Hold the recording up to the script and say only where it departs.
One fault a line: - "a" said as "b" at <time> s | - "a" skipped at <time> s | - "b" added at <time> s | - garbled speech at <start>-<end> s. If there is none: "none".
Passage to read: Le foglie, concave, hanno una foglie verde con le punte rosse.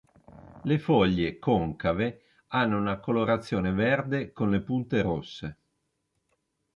- "foglie" said as "colorazione" at 3.0 s